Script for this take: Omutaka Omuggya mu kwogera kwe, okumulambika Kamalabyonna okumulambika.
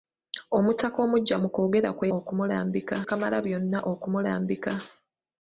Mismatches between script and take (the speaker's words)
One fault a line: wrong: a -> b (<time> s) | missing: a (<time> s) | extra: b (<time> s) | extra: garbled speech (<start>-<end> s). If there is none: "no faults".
no faults